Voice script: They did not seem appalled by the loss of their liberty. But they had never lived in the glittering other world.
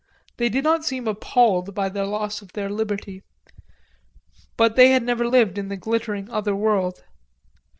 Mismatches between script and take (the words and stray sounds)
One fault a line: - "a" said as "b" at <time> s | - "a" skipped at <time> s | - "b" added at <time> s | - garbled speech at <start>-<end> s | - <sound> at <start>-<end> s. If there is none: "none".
none